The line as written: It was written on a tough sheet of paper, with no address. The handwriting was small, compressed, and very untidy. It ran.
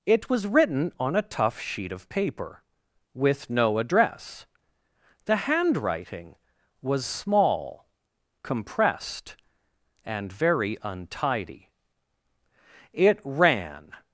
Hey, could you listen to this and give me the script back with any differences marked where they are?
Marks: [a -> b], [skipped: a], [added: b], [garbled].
It was written on a tough sheet of paper, with no address. The handwriting was small, compressed, and very untidy. It ran.